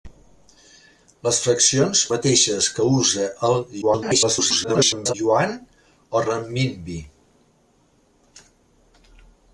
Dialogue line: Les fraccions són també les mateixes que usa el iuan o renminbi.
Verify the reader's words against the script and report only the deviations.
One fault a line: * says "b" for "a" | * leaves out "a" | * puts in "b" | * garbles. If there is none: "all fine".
* leaves out "són també les"
* garbles